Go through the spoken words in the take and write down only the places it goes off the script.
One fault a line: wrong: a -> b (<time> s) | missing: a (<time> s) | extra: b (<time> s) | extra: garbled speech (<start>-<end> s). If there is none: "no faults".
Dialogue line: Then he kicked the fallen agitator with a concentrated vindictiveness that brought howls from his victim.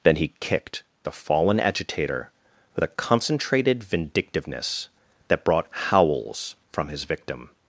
no faults